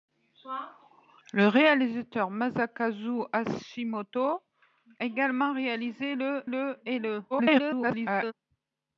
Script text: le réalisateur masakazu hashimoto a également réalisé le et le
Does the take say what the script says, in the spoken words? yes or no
no